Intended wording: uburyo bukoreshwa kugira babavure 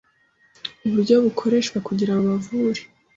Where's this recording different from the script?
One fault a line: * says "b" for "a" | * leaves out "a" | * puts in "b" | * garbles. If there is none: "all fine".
all fine